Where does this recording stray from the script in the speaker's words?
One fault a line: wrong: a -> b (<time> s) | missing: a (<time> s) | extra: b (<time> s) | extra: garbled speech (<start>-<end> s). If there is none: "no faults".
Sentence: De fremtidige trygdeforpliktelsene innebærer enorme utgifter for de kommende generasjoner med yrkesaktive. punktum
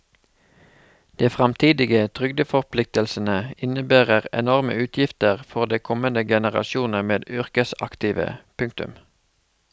no faults